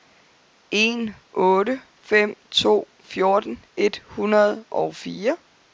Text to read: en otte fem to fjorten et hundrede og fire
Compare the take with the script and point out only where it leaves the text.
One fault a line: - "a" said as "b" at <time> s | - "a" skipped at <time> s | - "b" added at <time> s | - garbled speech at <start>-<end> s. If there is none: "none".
none